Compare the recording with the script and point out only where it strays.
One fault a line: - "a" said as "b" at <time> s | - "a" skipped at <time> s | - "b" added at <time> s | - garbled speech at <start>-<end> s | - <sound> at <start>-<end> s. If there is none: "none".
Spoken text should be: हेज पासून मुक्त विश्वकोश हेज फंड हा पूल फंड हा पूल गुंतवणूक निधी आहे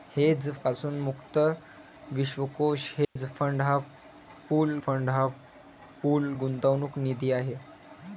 - dropout at 3.0-3.2 s